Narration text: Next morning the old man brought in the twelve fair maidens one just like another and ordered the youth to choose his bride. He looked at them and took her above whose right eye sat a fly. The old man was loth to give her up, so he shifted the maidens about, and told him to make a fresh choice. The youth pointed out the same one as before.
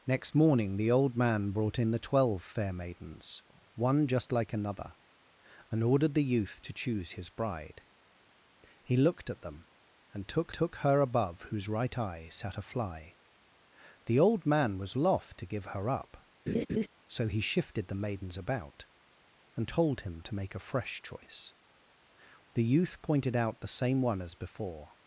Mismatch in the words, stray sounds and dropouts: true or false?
true